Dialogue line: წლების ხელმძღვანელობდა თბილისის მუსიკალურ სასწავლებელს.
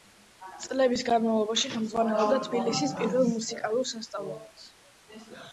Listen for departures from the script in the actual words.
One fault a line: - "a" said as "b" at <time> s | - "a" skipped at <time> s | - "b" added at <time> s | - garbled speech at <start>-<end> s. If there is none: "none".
- "განმავლობაში" added at 1.1 s
- "პირველ" added at 3.0 s